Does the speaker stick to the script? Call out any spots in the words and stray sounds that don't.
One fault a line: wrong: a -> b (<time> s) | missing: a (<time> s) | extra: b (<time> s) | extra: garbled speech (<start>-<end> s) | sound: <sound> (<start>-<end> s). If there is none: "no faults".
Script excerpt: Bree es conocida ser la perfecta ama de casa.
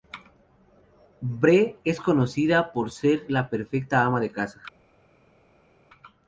extra: por (2.7 s)